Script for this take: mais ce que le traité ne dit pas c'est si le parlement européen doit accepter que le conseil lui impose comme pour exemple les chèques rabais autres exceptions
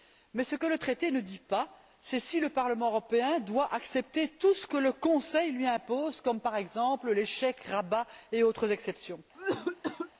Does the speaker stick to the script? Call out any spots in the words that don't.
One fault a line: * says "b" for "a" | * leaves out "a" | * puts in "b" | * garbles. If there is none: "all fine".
* puts in "tout ce"
* says "par" for "pour"
* puts in "et"